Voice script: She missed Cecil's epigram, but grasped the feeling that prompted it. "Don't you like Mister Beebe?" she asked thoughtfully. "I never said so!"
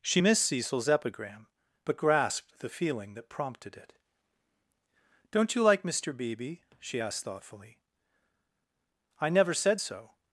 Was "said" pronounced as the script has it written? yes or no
yes